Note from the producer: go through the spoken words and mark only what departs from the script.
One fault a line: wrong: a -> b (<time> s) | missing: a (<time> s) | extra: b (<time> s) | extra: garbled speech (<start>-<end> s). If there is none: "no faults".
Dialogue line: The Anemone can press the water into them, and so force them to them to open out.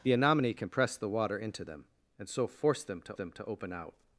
no faults